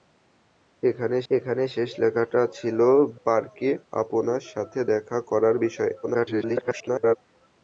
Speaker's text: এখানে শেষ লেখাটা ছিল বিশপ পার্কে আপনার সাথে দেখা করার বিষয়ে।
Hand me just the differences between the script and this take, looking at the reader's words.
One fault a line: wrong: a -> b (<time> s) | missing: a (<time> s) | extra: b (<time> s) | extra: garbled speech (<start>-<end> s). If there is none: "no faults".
extra: এখানে (1.3 s)
missing: বিশপ (2.8 s)
extra: garbled speech (6.0-7.2 s)